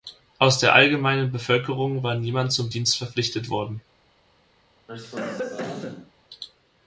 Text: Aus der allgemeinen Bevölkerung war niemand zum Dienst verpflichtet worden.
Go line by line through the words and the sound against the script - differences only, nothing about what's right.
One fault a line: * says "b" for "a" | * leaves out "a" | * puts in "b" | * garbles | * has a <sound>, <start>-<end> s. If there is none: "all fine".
* has a cough, 4.9-6.1 s